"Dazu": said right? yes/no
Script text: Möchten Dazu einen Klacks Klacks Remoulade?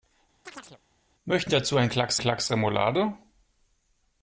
yes